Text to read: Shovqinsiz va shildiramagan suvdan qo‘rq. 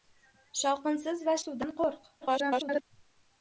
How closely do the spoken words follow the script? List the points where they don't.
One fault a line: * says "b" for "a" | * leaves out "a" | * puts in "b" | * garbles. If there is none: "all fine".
* leaves out "shildiramagan"
* garbles